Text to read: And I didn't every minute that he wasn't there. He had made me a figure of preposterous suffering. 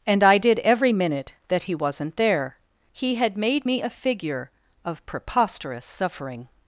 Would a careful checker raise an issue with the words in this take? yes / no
yes